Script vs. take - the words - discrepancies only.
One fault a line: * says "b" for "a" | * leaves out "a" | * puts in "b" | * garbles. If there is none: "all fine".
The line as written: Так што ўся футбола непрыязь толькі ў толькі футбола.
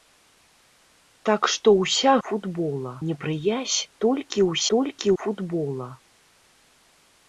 all fine